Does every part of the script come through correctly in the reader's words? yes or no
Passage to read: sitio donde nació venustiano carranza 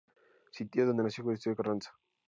yes